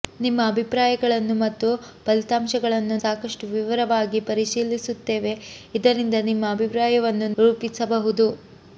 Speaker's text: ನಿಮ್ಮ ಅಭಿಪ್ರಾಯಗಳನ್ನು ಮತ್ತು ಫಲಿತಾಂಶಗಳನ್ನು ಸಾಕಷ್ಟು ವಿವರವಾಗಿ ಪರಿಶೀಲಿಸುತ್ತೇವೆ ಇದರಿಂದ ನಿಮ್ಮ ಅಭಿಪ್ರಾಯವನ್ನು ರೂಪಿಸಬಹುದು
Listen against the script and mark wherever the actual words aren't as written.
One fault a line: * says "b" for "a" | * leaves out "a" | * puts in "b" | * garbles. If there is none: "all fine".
all fine